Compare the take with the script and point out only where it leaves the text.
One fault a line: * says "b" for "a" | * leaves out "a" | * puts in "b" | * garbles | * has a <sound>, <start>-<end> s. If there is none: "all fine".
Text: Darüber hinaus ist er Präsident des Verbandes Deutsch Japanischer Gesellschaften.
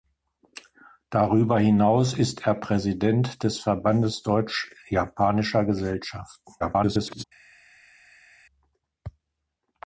* garbles